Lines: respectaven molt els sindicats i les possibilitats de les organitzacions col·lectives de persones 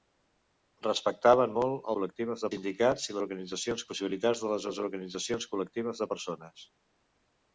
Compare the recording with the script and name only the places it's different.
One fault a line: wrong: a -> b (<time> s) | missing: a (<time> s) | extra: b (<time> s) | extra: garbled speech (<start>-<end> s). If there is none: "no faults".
wrong: els -> col·lectives (2.0 s)
wrong: les -> organitzacions (3.2 s)
extra: les (4.7 s)